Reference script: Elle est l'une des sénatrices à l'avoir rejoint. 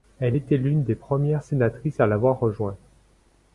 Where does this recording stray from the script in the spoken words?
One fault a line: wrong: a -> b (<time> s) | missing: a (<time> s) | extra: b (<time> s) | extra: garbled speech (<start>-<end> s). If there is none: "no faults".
wrong: est -> était (0.3 s)
extra: premières (0.9 s)